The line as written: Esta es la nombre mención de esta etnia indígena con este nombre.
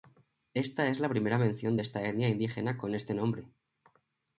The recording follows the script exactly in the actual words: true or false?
false